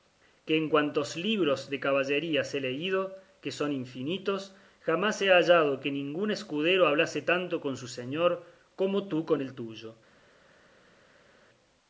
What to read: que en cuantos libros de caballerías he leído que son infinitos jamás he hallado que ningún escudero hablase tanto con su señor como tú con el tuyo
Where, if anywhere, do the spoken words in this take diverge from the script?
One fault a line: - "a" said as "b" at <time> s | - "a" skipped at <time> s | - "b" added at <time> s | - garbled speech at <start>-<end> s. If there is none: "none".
none